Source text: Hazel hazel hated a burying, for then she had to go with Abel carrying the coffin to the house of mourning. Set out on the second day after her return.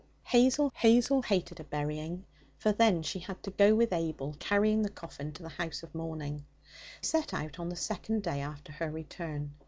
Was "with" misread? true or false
false